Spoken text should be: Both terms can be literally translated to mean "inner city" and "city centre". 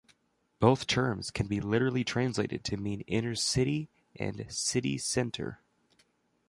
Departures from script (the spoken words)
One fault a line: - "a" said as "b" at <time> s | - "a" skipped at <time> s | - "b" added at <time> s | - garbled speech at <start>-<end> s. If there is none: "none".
none